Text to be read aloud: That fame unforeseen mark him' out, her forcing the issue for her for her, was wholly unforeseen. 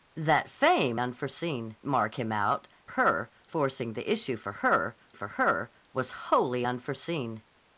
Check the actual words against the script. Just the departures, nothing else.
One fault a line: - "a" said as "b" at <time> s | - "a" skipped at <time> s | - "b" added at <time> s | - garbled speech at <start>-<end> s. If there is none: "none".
none